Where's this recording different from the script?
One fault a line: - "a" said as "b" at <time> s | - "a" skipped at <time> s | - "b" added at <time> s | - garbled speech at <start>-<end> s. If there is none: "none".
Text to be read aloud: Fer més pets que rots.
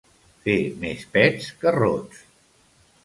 none